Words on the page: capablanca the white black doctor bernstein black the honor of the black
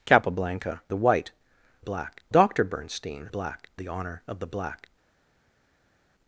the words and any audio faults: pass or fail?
pass